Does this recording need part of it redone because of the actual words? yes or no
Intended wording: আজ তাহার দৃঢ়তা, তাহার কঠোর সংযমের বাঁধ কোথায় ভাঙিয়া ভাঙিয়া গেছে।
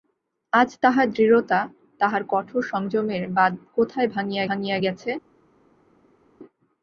no